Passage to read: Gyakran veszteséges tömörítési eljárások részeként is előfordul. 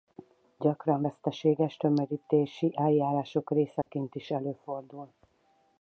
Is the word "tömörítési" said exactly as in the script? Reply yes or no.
yes